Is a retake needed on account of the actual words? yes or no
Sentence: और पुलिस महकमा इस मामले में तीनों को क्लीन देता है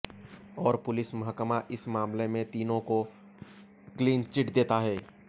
yes